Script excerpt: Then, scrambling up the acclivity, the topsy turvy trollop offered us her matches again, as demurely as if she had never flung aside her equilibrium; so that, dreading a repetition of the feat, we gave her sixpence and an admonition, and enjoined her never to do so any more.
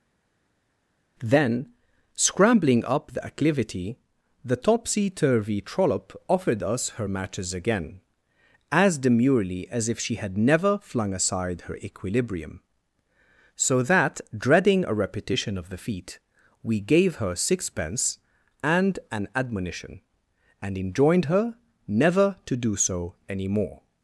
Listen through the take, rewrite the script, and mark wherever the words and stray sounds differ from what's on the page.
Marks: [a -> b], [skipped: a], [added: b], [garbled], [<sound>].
Then, scrambling up the acclivity, the topsy turvy trollop offered us her matches again, as demurely as if she had never flung aside her equilibrium; so that, dreading a repetition of the feat, we gave her sixpence and an admonition, and enjoined her never to do so any more.